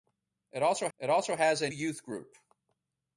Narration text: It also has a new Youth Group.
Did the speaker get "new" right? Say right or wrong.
wrong